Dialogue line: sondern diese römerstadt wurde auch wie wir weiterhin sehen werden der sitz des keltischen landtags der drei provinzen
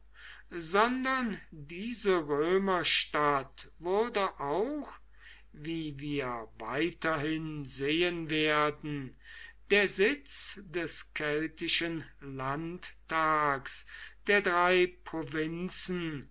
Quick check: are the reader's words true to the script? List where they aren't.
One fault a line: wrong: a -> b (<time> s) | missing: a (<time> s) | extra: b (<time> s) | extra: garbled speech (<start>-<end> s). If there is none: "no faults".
no faults